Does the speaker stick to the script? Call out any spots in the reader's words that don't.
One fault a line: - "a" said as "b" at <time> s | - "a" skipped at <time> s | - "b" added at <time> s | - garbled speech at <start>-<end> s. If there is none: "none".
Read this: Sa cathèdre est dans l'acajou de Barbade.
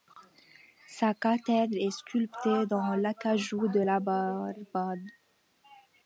- "sculptée" added at 1.9 s
- "la" added at 3.8 s